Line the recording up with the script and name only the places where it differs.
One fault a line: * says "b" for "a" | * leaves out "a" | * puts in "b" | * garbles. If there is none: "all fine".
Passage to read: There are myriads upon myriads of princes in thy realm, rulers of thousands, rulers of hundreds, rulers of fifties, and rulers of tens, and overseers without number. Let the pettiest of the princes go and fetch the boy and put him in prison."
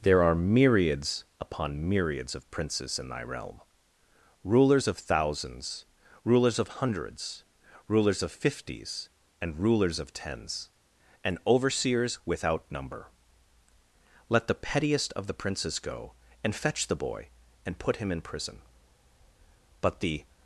* puts in "But the"